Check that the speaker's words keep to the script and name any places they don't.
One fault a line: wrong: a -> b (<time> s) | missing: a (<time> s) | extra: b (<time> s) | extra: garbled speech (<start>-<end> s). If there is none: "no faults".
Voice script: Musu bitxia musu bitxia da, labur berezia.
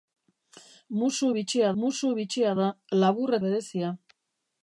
no faults